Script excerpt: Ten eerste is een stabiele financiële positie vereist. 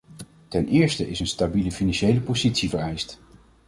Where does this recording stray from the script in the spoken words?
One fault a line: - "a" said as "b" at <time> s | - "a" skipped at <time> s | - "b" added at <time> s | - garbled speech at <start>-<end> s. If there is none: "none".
none